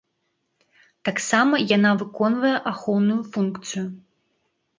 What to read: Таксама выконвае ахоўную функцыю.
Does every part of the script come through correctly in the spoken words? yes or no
no